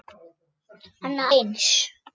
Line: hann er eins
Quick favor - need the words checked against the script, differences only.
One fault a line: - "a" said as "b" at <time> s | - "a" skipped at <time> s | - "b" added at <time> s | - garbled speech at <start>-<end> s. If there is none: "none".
none